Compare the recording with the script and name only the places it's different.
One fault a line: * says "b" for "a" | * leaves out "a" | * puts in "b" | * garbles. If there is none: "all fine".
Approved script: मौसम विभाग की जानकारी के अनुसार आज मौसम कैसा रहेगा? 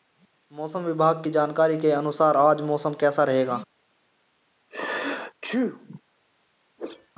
all fine